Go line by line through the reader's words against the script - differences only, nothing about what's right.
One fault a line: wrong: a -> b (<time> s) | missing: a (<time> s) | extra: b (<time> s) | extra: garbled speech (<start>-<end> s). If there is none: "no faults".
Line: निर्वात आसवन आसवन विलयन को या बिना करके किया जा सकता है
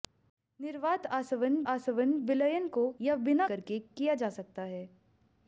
no faults